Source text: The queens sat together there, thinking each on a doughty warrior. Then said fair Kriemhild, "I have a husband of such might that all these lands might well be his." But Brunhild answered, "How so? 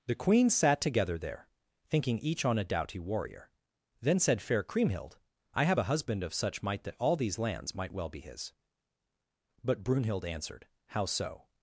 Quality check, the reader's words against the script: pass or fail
pass